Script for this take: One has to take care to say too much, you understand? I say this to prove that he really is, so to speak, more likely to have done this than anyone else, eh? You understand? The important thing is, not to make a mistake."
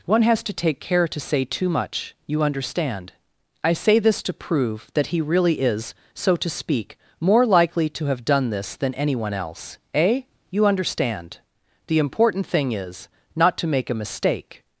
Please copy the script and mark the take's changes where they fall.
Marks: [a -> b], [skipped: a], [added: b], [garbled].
One has to take care to say too much, you understand? I say this to prove that he really is, so to speak, more likely to have done this than anyone else, eh? You understand? The important thing is, not to make a mistake."